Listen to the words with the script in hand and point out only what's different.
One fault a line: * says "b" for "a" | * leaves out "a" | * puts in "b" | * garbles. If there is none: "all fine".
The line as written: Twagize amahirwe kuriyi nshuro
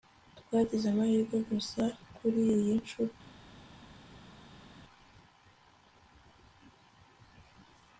* puts in "gusa"